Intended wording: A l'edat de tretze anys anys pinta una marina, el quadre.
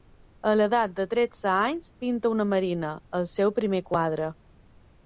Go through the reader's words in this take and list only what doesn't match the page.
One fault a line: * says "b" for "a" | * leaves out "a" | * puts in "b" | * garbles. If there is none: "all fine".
* leaves out "anys"
* puts in "seu primer"